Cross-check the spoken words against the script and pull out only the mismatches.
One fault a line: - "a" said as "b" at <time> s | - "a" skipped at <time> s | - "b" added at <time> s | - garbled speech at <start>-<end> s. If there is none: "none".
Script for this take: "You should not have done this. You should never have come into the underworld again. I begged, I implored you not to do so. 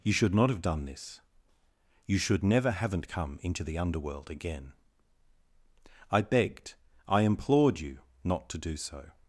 - "have" said as "haven't" at 2.7 s